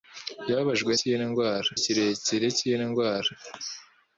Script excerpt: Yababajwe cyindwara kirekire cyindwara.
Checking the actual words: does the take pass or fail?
pass